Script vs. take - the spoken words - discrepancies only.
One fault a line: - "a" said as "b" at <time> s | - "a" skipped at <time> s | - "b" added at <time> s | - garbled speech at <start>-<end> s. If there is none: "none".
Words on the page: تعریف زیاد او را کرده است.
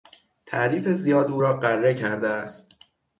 - "غره" added at 1.6 s